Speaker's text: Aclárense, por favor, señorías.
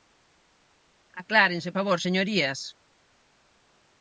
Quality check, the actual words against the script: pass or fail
fail